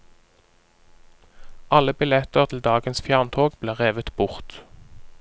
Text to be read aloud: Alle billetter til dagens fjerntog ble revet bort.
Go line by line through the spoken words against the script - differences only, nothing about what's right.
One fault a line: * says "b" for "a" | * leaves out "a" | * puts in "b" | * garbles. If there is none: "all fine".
all fine